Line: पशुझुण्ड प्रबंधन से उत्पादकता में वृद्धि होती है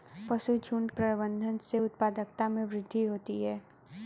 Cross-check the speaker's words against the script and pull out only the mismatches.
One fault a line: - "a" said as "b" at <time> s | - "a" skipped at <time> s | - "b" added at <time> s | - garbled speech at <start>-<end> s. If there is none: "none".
none